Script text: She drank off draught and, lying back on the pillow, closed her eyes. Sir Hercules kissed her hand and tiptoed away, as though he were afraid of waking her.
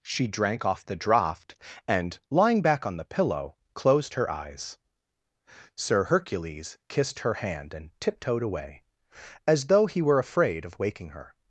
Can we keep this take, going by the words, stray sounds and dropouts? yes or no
no